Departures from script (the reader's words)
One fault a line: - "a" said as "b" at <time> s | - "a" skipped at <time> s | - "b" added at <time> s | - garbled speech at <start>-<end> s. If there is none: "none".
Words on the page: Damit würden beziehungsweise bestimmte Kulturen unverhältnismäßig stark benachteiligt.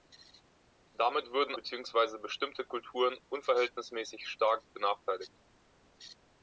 none